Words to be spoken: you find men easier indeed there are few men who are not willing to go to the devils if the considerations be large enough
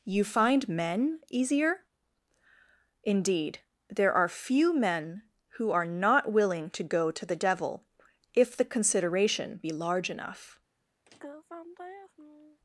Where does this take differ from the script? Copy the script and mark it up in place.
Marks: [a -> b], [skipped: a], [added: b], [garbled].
you find men easier indeed there are few men who are not willing to go to the [devils -> devil] if the [considerations -> consideration] be large enough